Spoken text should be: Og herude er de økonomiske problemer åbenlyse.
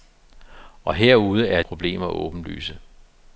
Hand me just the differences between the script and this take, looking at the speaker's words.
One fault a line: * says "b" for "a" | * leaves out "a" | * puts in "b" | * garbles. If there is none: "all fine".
* leaves out "de økonomiske"